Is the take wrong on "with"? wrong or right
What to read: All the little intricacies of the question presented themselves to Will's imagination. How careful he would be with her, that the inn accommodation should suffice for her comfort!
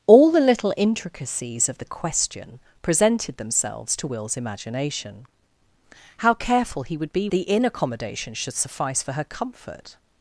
wrong